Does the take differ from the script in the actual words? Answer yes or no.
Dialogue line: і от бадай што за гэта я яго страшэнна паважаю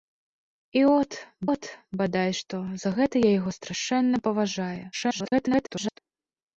yes